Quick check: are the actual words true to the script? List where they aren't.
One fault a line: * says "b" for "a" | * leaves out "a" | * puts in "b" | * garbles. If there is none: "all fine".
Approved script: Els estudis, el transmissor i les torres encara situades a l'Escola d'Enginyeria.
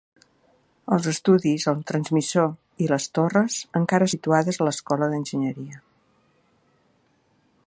all fine